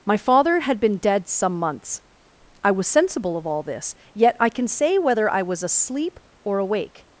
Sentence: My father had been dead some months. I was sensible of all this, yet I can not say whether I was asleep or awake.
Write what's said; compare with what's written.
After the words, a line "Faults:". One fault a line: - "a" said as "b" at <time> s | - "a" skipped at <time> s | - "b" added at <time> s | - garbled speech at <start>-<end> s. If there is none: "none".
My father had been dead some months. I was sensible of all this, yet I can say whether I was asleep or awake.
Faults:
- "not" skipped at 4.7 s